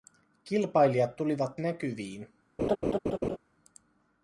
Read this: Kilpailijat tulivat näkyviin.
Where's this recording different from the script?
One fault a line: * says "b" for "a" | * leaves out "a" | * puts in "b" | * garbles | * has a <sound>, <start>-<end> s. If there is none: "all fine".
* has a laugh, 2.6-3.4 s